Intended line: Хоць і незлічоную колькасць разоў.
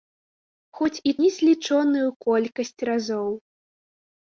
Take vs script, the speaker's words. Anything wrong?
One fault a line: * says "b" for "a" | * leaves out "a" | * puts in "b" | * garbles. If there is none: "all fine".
all fine